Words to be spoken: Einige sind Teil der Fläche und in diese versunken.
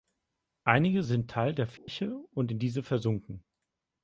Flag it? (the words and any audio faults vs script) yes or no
yes